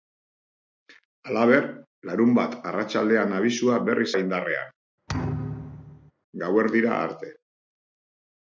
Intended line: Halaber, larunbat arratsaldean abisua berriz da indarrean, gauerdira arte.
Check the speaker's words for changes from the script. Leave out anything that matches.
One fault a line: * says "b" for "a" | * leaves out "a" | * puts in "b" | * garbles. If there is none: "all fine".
all fine